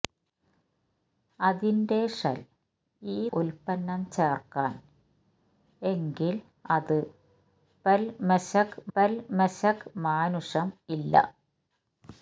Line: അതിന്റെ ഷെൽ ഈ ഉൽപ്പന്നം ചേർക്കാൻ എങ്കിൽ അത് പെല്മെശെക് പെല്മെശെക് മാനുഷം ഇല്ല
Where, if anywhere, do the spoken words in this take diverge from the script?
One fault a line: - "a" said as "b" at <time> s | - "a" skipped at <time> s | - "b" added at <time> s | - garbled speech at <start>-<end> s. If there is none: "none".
none